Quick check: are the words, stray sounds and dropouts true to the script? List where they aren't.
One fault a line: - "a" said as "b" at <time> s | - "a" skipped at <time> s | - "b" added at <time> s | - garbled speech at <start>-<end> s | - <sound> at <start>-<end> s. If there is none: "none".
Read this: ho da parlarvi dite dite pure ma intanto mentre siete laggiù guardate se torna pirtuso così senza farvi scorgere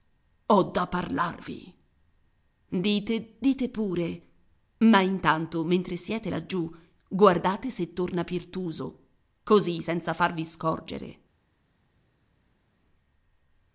none